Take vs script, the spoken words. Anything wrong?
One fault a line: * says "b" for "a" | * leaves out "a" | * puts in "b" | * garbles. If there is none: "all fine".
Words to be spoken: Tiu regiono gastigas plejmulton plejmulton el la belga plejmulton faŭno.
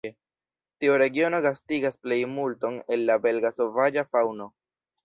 * leaves out "plejmulton"
* says "sovaĝa" for "plejmulton"